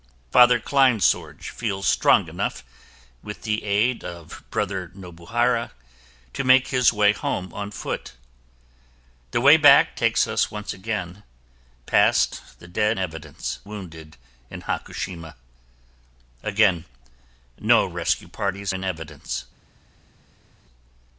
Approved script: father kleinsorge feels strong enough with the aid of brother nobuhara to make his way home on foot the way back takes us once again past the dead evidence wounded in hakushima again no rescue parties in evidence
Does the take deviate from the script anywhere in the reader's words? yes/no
no